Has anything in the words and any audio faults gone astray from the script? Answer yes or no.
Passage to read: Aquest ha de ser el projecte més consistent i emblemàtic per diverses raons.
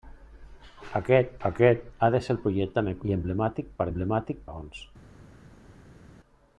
yes